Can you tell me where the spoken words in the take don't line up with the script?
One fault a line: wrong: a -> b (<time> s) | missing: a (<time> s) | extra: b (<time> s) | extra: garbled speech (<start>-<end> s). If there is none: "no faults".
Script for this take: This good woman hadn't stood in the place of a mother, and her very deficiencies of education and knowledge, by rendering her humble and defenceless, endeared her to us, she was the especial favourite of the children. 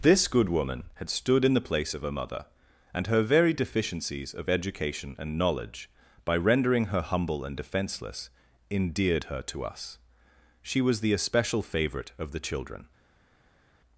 wrong: hadn't -> had (0.9 s)